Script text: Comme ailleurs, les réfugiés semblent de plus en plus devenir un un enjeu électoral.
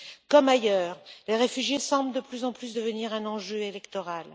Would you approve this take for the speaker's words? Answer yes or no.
no